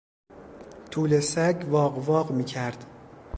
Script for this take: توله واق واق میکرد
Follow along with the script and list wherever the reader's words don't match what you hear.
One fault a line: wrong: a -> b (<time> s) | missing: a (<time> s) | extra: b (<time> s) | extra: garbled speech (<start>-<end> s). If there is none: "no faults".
extra: سگ (1.2 s)